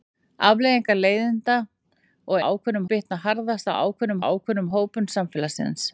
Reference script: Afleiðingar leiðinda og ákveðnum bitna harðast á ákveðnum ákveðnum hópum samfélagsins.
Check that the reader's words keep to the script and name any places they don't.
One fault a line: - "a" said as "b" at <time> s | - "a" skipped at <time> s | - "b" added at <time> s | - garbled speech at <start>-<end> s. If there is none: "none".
none